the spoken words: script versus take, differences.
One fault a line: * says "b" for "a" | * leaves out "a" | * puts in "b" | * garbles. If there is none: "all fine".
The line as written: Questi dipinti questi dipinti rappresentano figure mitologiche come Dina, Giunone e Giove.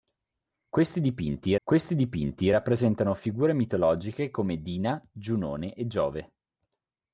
all fine